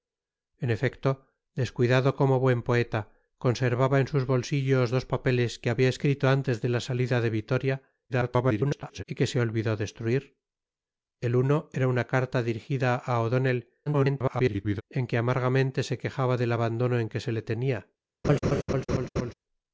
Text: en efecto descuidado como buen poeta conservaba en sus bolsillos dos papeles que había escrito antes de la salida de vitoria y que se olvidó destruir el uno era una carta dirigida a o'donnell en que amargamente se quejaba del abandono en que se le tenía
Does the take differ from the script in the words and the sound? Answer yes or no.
yes